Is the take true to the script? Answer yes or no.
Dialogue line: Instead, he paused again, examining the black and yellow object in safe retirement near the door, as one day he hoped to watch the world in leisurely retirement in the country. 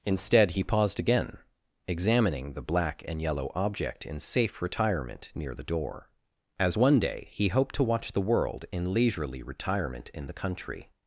yes